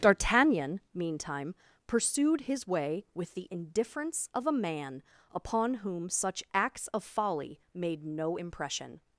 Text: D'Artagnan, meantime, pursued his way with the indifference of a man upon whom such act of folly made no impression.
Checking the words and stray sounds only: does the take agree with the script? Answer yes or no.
no